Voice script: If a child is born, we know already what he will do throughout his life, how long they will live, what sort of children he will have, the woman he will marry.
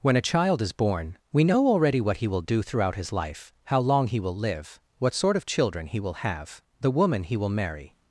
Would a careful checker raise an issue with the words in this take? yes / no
yes